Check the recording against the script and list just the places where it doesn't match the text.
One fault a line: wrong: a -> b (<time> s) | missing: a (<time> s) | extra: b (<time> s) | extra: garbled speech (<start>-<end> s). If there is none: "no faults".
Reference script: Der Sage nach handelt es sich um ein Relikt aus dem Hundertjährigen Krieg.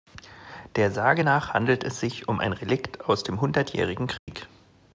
no faults